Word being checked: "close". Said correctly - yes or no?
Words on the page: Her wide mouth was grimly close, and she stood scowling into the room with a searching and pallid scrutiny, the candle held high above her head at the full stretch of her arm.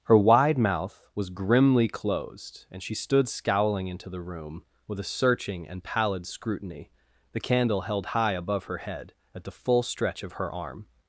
no